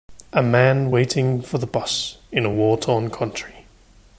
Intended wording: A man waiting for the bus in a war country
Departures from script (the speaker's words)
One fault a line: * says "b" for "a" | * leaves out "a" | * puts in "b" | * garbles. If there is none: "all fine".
* puts in "torn"